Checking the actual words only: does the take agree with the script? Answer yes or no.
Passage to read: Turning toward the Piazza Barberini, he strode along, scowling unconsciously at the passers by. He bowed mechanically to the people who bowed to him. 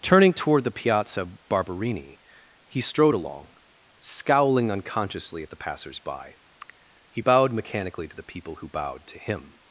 yes